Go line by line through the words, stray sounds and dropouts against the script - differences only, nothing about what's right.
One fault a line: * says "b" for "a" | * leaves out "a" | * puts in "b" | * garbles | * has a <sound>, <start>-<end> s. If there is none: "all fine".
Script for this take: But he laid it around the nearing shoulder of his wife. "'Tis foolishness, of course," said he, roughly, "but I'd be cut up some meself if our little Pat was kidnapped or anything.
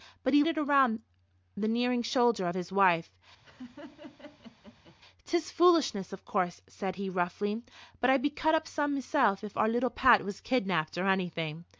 * leaves out "laid"
* has a laugh, 3.4-5.0 s